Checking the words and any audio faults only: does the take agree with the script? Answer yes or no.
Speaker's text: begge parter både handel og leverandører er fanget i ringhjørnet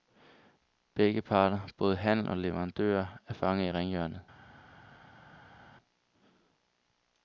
yes